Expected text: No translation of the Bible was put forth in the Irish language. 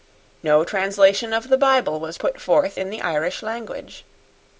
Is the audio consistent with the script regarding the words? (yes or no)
yes